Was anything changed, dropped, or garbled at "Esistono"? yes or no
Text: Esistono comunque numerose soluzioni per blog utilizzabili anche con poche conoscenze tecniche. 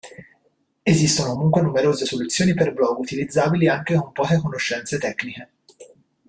no